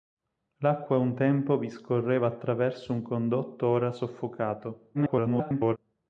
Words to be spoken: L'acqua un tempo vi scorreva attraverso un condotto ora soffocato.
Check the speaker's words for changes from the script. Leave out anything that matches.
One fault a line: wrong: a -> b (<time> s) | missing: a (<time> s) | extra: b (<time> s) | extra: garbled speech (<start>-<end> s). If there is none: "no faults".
extra: garbled speech (4.9-5.8 s)